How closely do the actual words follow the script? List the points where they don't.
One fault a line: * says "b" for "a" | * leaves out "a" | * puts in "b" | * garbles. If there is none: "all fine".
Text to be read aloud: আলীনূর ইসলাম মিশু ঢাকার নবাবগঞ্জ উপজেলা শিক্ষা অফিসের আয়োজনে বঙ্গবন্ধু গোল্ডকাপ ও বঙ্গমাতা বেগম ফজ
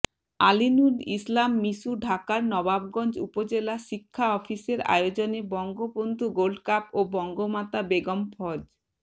all fine